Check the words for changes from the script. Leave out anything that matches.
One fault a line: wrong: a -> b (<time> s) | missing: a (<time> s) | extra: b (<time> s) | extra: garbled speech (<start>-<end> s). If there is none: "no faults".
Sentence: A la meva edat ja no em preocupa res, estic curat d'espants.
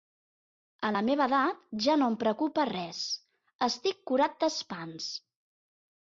no faults